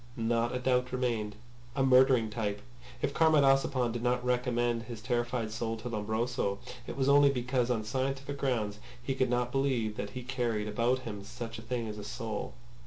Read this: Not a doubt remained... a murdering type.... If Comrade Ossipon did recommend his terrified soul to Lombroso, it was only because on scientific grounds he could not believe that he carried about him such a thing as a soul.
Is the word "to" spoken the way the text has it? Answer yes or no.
yes